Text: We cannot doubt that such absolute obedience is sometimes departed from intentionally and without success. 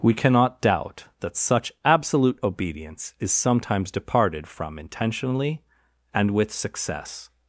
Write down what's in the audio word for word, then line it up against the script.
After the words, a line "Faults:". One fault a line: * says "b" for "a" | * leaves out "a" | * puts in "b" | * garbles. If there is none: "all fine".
We cannot doubt that such absolute obedience is sometimes departed from intentionally and with success.
Faults:
* says "with" for "without"